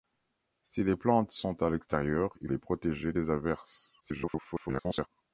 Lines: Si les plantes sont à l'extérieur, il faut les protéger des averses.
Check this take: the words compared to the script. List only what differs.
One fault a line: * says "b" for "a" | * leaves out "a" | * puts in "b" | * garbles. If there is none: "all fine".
* leaves out "faut"
* garbles